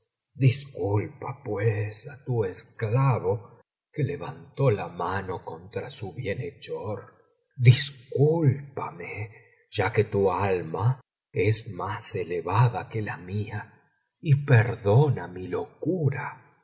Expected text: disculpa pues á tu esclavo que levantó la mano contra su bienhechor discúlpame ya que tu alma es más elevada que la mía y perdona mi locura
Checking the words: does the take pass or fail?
pass